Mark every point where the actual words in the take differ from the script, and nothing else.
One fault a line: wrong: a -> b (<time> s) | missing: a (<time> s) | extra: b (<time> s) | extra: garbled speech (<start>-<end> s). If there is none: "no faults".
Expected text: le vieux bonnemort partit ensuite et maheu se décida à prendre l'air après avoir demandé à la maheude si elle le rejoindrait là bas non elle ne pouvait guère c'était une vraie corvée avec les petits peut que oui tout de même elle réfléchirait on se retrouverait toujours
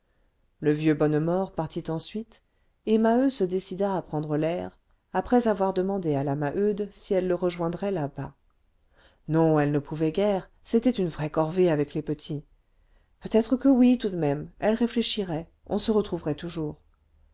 extra: être (13.3 s)